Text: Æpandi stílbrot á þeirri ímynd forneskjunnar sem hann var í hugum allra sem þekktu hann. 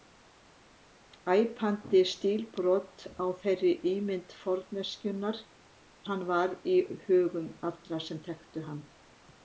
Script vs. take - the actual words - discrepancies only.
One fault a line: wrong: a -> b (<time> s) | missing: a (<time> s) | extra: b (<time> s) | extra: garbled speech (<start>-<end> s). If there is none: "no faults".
missing: sem (5.4 s)